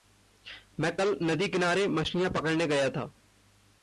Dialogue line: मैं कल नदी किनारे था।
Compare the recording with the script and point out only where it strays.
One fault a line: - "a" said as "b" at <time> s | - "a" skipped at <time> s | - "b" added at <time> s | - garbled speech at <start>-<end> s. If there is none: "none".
- "मछलियाँ पकड़ने गया" added at 1.9 s